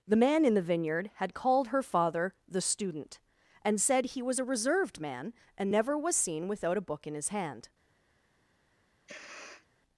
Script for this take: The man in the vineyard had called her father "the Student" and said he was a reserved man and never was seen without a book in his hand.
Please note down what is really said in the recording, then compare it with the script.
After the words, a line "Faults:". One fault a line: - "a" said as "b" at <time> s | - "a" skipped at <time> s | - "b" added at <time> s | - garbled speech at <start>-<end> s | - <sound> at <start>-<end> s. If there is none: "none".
The man in the vineyard had called her father "the Student" and said he was a reserved man and never was seen without a book in his hand.
Faults:
- sniff at 9.1-9.7 s